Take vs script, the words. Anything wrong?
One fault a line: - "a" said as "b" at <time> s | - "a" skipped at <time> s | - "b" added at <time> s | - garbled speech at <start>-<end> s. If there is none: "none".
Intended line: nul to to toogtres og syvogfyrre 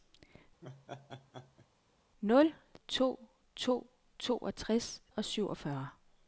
none